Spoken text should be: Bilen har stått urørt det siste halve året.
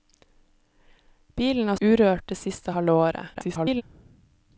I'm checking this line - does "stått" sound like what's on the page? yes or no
no